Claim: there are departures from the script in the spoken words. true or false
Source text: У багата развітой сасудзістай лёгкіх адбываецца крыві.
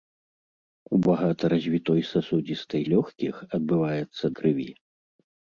false